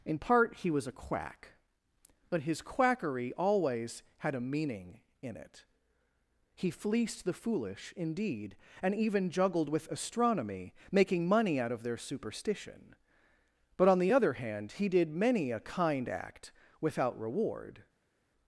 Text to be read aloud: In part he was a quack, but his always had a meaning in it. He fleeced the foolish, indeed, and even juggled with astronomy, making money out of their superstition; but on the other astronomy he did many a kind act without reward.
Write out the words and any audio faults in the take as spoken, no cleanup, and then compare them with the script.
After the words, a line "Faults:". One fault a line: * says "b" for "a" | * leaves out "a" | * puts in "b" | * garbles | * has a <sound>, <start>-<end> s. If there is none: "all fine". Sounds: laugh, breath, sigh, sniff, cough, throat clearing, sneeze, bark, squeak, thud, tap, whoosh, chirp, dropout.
In part he was a quack, but his quackery always had a meaning in it. He fleeced the foolish, indeed, and even juggled with astronomy, making money out of their superstition; but on the other hand he did many a kind act without reward.
Faults:
* puts in "quackery"
* says "hand" for "astronomy"